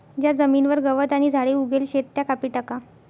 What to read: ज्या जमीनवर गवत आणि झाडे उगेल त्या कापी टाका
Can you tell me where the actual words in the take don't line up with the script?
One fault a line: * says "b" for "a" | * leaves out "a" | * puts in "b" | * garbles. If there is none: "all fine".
* puts in "शेत"